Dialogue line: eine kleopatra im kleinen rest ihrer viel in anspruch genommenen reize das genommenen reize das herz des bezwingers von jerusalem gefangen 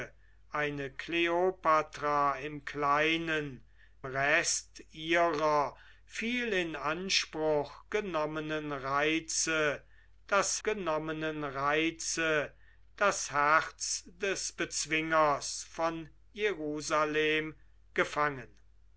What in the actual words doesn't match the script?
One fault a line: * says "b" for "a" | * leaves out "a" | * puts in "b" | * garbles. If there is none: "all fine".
all fine